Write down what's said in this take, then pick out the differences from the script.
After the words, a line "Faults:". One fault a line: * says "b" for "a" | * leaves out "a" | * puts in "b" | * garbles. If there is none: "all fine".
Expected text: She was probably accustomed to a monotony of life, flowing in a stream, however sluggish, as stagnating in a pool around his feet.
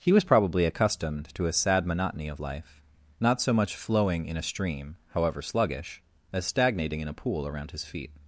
He was probably accustomed to a sad monotony of life, not so much flowing in a stream, however sluggish, as stagnating in a pool around his feet.
Faults:
* says "He" for "She"
* puts in "sad"
* puts in "not so much"